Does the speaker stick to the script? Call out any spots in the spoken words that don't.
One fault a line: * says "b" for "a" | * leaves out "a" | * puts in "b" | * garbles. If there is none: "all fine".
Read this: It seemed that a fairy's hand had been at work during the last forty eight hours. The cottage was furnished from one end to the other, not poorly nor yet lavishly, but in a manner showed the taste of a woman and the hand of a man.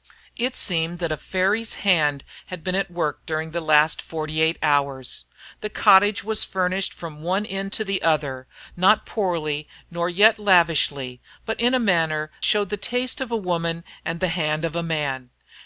all fine